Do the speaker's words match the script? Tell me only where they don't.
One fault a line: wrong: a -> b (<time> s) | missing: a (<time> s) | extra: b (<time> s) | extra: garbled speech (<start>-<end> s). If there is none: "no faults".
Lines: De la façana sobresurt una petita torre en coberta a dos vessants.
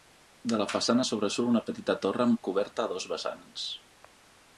wrong: en -> amb (2.3 s)